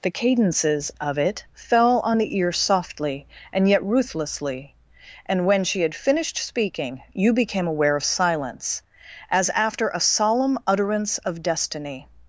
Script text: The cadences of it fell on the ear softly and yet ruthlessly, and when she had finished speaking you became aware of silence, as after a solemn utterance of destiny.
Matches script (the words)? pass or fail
pass